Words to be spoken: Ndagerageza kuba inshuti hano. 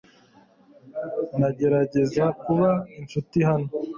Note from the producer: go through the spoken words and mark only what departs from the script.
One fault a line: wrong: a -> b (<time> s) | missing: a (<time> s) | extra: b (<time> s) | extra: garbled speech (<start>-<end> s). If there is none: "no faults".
no faults